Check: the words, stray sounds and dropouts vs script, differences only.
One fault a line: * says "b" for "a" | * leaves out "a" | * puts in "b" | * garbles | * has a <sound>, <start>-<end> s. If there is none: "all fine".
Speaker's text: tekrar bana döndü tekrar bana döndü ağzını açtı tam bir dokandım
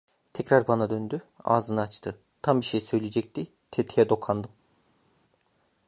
* leaves out "tekrar bana döndü"
* puts in "şey söyleyecekti tetiğe"